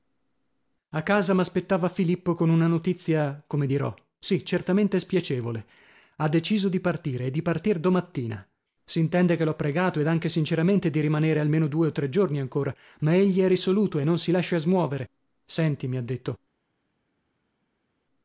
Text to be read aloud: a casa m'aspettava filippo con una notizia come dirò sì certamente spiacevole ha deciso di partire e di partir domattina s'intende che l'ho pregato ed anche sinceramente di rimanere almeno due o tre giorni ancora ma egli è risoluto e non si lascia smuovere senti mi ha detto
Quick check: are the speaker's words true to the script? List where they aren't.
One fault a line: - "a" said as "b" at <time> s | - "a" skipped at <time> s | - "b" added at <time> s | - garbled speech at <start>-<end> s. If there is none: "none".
none